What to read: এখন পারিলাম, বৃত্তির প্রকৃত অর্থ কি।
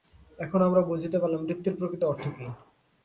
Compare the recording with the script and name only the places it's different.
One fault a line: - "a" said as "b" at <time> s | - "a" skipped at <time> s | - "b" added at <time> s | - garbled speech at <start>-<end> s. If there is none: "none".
- "আমরা বুঝিতে" added at 0.7 s